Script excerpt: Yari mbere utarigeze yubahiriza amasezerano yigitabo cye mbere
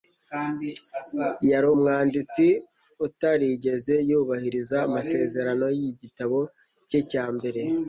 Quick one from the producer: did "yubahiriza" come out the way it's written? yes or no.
yes